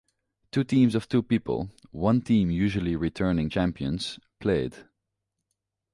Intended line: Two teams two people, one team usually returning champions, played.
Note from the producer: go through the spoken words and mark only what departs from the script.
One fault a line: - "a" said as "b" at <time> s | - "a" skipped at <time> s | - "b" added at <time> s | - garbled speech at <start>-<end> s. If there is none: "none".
- "of" added at 0.9 s